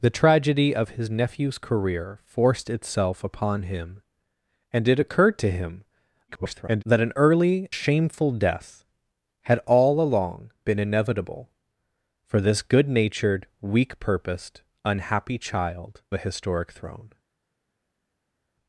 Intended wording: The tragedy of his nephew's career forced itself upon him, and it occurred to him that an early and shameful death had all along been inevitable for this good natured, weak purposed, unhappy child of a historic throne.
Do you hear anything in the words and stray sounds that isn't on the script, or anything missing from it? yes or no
yes